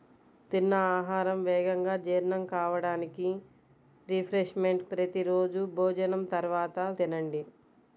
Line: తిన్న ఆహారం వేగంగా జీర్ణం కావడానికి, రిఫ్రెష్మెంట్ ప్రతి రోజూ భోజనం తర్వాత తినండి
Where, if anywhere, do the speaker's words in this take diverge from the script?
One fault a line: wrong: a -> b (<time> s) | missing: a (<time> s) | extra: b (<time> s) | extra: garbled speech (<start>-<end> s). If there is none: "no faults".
no faults